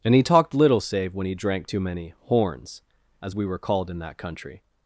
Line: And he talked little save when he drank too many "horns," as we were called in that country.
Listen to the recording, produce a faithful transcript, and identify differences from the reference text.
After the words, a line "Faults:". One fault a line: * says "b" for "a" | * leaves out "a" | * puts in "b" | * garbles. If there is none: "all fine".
And he talked little save when he drank too many "horns," as we were called in that country.
Faults:
all fine